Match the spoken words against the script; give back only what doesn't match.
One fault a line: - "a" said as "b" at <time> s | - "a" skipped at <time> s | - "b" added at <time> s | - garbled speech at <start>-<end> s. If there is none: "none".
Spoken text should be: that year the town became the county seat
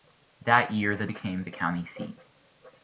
- "town" skipped at 1.1 s